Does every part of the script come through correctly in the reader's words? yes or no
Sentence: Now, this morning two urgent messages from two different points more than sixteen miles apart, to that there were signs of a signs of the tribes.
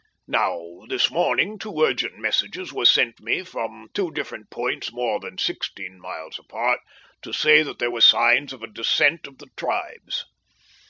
no